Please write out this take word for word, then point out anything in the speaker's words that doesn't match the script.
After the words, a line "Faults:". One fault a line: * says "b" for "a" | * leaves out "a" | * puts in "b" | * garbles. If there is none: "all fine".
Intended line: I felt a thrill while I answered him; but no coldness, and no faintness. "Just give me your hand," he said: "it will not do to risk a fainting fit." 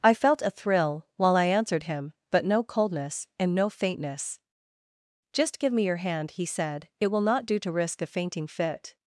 I felt a thrill while I answered him; but no coldness, and no faintness. "Just give me your hand," he said: "it will not do to risk a fainting fit."
Faults:
all fine